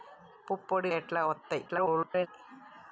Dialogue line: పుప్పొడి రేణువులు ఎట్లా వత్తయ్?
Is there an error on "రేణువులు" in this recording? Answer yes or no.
yes